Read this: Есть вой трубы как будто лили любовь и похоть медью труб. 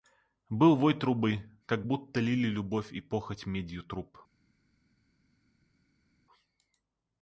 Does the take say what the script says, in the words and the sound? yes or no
no